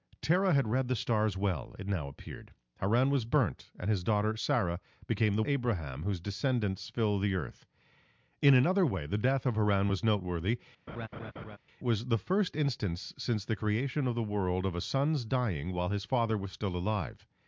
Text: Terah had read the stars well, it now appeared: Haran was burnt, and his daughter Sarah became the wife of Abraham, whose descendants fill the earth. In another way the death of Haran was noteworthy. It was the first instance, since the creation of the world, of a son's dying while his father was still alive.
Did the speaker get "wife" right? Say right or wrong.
wrong